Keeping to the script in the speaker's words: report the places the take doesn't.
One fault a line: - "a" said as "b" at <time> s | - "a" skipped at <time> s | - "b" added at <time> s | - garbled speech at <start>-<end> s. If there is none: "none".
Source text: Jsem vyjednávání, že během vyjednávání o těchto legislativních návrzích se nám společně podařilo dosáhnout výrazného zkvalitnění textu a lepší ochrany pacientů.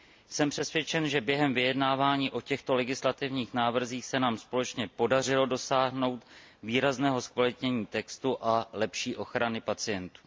- "vyjednávání" said as "přesvědčen" at 0.5 s